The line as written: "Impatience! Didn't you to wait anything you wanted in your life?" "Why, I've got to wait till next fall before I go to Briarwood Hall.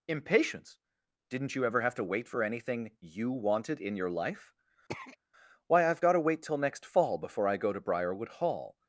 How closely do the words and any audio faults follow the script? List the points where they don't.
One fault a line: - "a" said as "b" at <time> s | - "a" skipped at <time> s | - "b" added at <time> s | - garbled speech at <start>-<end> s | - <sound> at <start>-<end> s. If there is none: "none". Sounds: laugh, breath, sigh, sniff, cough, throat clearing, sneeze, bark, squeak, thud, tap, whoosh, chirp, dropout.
- "ever have" added at 1.6 s
- "for" added at 2.3 s
- throat clearing at 4.9-5.2 s